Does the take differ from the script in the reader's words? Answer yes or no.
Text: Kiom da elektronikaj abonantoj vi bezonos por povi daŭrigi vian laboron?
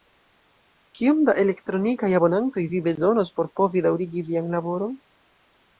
no